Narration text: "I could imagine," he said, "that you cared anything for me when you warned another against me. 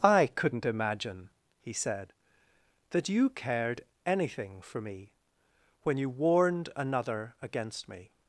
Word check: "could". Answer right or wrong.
wrong